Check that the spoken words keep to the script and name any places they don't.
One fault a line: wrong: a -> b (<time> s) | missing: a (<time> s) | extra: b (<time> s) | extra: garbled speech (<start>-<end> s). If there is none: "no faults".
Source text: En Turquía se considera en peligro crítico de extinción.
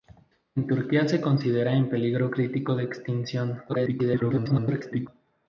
extra: garbled speech (3.7-5.1 s)